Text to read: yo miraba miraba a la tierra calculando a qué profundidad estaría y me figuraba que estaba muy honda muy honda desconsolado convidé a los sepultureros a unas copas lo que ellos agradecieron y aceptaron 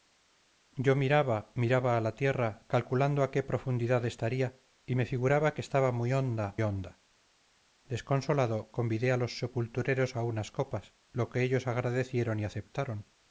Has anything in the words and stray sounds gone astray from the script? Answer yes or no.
yes